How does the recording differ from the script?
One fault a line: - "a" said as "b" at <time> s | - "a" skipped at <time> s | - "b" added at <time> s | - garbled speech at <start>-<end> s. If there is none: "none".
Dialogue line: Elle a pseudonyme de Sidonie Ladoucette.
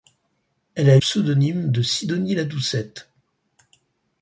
none